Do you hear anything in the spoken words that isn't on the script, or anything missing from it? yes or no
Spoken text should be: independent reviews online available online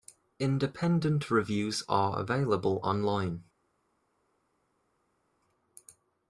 yes